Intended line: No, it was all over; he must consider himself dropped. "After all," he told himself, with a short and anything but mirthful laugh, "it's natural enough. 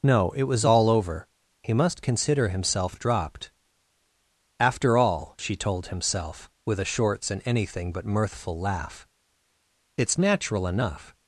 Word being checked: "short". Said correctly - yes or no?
no